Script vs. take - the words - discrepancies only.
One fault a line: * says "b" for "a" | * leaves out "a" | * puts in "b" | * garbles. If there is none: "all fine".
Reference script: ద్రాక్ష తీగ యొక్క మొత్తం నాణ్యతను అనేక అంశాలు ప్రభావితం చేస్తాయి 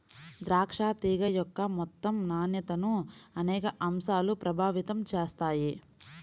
all fine